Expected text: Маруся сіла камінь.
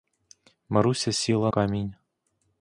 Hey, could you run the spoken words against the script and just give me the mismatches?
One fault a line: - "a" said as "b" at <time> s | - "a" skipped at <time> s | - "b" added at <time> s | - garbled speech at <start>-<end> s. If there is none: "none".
none